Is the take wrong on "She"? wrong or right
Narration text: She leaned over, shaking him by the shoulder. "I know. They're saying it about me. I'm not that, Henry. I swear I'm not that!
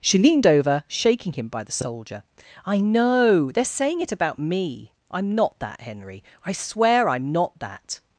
right